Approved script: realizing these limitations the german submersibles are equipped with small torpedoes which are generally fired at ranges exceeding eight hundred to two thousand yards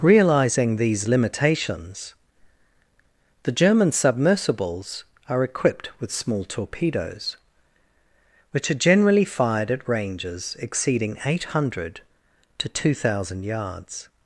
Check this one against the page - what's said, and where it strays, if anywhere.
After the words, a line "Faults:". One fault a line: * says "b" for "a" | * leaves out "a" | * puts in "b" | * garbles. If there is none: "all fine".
realizing these limitations the german submersibles are equipped with small torpedoes which are generally fired at ranges exceeding eight hundred to two thousand yards
Faults:
all fine